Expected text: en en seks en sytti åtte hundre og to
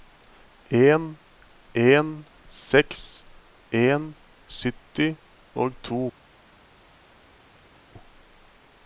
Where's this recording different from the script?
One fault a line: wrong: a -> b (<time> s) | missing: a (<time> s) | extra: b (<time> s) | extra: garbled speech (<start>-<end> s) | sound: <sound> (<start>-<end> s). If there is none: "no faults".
missing: åtte hundre (5.1 s)